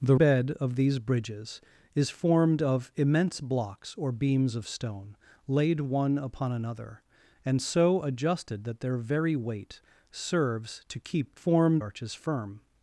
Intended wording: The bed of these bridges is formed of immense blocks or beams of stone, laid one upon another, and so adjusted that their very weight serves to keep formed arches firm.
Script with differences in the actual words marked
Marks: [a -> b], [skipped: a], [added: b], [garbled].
The bed of these bridges is formed of immense blocks or beams of stone, laid one upon another, and so adjusted that their very weight serves to keep formed arches firm.